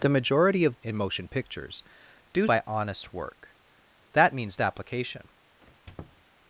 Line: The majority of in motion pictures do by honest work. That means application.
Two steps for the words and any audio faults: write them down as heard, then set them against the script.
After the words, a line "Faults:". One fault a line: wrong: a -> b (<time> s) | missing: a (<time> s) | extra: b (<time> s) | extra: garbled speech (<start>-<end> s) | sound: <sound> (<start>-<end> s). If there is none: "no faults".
The majority of in motion pictures do by honest work. That means application.
Faults:
sound: squeak (5.6-6.2 s)